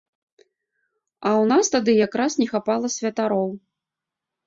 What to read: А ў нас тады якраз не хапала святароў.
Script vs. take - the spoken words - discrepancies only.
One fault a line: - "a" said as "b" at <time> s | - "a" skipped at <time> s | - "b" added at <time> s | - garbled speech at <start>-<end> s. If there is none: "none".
none